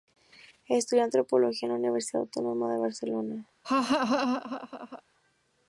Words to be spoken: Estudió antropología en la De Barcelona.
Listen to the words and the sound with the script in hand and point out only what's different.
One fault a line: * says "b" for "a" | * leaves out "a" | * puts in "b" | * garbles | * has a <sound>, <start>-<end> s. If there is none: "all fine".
* puts in "Universidad Autónoma"
* has a laugh, 3.6-5.0 s